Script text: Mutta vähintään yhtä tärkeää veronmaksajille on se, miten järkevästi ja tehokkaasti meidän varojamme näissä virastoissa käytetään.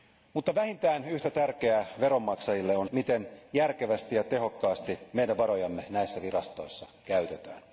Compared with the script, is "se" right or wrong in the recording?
wrong